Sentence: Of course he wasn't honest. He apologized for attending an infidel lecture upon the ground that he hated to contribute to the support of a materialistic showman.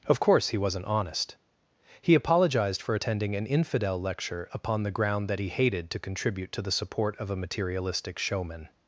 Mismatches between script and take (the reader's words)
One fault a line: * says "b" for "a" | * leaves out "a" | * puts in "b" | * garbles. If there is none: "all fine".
all fine